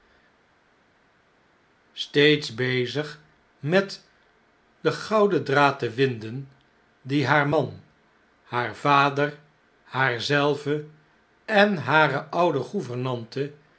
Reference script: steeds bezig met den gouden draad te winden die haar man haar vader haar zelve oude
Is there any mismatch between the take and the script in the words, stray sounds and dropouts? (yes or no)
yes